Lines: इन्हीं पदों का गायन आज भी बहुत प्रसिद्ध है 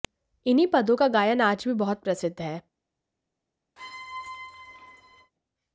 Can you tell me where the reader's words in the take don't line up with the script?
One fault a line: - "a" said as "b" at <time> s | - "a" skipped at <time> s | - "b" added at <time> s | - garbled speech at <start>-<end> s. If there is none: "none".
none